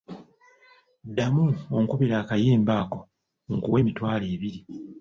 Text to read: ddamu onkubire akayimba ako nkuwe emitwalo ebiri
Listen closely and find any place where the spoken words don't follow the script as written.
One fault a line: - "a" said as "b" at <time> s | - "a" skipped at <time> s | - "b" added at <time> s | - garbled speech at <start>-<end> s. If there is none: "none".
none